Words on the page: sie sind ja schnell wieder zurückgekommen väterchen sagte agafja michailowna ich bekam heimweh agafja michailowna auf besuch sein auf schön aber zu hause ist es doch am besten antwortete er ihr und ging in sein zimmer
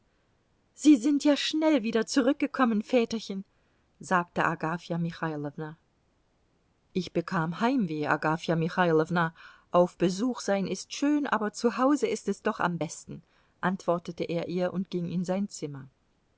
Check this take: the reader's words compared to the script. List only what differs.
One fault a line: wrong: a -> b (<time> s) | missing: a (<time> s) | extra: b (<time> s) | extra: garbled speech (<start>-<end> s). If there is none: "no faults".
wrong: auf -> ist (10.7 s)